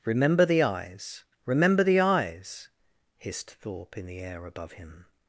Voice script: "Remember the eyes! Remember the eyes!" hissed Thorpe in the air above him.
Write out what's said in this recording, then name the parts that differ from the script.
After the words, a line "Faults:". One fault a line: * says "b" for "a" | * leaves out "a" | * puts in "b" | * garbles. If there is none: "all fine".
"Remember the eyes! Remember the eyes!" hissed Thorpe in the air above him.
Faults:
all fine